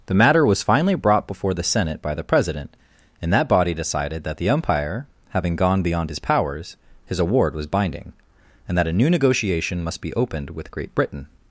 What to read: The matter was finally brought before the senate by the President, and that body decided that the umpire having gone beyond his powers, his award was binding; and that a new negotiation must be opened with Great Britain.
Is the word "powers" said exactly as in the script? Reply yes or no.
yes